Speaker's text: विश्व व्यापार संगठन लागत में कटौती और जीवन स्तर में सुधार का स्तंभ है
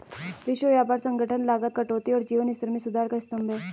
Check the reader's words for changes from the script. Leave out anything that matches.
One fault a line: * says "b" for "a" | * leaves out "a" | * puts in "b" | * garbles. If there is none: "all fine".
* leaves out "में"